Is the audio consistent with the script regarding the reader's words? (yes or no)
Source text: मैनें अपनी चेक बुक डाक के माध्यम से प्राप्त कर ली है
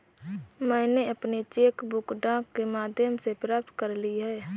yes